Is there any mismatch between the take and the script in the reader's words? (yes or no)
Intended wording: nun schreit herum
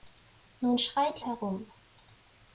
no